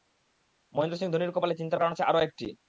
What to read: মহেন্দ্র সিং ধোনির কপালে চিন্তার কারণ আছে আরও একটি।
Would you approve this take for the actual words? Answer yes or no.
yes